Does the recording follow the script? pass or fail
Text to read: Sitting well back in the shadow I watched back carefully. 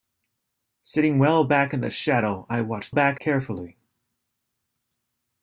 pass